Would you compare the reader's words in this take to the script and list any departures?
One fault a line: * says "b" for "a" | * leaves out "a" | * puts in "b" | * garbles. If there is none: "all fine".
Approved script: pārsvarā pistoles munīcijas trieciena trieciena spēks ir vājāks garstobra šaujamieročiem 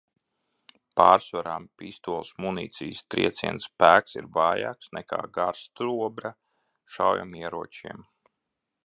* leaves out "trieciena"
* puts in "nekā"